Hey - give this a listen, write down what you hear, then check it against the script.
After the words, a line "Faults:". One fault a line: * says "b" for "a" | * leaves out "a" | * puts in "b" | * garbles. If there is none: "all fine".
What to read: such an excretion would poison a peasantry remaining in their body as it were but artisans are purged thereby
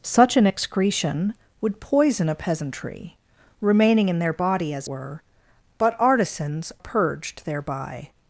such an excretion would poison a peasantry remaining in their body as were but artisans purged thereby
Faults:
* leaves out "it"
* leaves out "are"